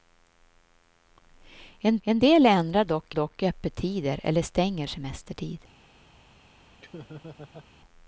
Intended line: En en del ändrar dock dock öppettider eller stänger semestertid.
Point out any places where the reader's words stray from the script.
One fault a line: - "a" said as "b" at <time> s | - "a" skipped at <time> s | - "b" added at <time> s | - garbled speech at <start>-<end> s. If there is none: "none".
none